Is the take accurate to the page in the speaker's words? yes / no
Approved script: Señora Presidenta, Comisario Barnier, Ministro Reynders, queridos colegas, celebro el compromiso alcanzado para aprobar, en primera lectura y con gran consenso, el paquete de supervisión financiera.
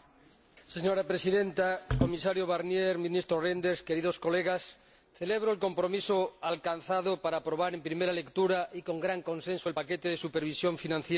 yes